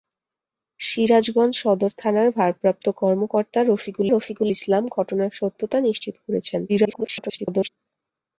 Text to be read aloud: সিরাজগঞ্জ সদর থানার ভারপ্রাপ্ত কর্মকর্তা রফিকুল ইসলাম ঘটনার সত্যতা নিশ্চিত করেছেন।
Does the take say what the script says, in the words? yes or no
no